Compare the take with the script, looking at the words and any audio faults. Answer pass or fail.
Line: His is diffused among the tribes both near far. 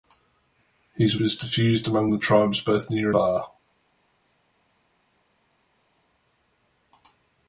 pass